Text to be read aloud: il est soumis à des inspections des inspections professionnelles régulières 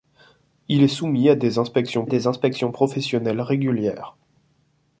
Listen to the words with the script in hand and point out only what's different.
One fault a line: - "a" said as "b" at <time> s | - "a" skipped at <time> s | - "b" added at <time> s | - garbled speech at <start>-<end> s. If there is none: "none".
none